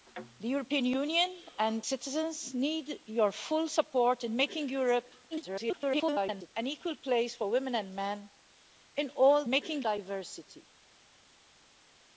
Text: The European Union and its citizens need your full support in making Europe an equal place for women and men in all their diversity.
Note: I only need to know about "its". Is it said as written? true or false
false